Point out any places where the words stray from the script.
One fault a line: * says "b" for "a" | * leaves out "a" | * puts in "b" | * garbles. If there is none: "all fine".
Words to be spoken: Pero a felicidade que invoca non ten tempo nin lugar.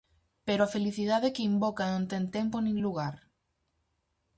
all fine